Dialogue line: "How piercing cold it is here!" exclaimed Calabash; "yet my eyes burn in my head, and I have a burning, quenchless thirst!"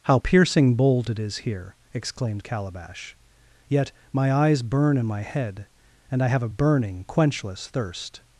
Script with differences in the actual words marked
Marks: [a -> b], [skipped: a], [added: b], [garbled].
"How piercing [cold -> bold] it is here!" exclaimed Calabash; "yet my eyes burn in my head, and I have a burning, quenchless thirst!"